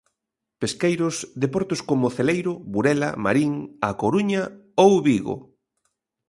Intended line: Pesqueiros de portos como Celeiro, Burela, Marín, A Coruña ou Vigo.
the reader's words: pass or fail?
pass